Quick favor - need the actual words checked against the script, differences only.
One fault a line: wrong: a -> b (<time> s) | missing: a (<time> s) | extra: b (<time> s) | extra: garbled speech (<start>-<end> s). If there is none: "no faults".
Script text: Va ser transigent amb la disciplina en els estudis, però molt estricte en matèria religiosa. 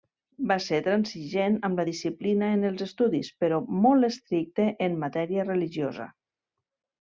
no faults